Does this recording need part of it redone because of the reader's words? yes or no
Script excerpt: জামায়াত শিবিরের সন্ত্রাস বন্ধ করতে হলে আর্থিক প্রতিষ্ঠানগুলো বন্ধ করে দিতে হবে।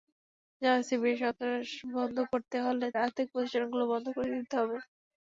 no